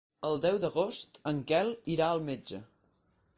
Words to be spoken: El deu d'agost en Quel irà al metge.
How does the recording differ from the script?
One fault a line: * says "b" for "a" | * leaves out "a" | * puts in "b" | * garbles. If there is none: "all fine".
all fine